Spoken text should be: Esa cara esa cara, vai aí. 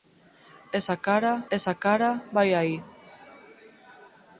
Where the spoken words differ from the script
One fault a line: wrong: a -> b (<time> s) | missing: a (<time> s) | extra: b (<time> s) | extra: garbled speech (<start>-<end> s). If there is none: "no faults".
no faults